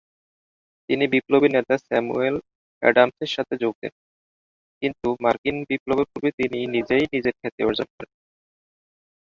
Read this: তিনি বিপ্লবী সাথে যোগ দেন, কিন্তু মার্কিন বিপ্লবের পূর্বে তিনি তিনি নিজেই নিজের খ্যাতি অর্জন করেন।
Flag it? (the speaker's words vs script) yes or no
yes